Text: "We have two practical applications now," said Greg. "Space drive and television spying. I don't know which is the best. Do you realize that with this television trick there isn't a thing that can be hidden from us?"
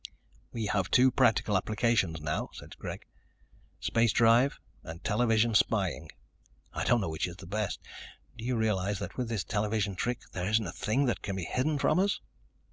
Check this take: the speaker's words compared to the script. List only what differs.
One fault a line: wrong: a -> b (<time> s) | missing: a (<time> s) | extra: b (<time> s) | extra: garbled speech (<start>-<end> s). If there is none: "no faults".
no faults